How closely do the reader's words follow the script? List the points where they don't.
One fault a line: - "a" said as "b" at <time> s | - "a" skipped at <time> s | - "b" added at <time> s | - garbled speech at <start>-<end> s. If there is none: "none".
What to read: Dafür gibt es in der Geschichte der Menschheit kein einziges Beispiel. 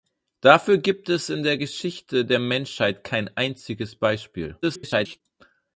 - garbled speech at 4.6-5.2 s